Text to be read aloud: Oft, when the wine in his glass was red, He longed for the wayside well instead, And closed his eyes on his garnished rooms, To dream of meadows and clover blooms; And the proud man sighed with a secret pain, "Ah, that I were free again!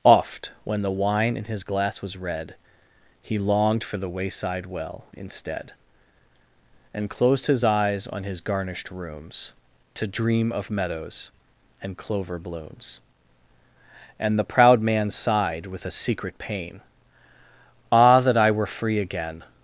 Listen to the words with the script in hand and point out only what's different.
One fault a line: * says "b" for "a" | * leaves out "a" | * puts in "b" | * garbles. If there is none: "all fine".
all fine